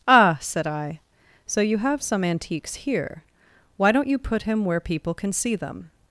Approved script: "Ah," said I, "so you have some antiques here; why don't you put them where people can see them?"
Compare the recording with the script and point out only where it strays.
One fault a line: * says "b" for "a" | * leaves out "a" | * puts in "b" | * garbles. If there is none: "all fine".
* says "him" for "them"